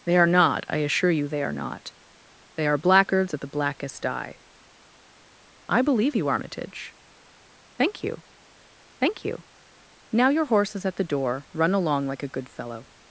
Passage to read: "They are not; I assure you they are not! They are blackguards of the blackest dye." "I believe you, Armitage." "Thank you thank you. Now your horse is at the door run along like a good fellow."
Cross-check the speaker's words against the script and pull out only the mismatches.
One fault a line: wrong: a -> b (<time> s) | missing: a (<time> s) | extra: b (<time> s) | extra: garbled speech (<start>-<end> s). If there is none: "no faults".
no faults